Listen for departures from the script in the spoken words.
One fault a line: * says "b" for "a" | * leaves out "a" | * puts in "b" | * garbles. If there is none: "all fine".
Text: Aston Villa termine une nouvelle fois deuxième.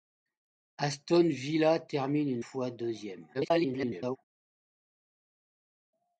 * leaves out "nouvelle"
* garbles